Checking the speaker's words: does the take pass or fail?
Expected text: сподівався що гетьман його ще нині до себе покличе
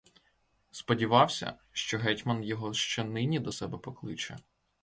pass